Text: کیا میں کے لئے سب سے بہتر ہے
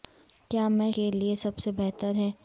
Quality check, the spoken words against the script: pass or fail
pass